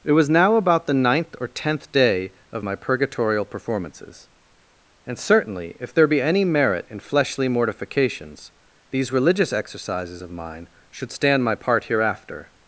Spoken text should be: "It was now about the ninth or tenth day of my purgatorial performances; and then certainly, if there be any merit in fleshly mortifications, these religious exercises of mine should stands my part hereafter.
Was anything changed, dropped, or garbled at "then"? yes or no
yes